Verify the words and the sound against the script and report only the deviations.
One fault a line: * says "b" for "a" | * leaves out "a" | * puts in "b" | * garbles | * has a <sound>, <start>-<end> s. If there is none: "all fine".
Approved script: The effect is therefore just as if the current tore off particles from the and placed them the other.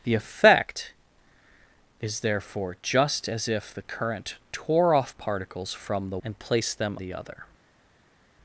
all fine